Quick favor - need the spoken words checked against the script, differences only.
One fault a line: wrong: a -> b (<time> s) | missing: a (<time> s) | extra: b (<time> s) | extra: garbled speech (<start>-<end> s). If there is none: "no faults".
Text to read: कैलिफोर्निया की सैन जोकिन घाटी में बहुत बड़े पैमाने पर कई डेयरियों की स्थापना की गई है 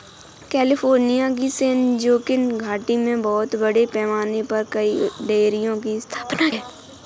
missing: की गई (6.5 s)